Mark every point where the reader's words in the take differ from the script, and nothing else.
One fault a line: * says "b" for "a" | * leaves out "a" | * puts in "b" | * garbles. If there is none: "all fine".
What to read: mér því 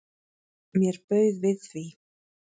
* puts in "bauð við"